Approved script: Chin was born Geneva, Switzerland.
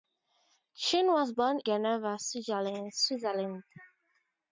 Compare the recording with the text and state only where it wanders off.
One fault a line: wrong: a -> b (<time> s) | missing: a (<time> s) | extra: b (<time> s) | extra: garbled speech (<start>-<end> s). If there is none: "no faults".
no faults